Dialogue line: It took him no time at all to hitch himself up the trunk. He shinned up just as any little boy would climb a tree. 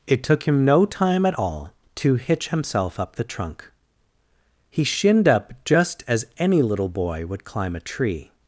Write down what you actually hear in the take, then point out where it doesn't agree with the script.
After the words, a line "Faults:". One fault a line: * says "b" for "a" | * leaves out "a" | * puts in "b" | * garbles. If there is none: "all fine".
It took him no time at all to hitch himself up the trunk. He shinned up just as any little boy would climb a tree.
Faults:
all fine